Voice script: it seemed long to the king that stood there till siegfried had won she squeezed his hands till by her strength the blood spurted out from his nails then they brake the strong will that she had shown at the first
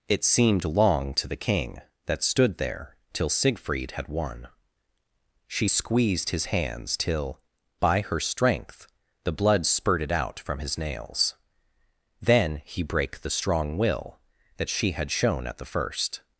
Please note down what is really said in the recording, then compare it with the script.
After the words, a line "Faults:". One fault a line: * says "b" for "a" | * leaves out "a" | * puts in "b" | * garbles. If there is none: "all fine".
it seemed long to the king that stood there till siegfried had won she squeezed his hands till by her strength the blood spurted out from his nails then he brake the strong will that she had shown at the first
Faults:
* says "he" for "they"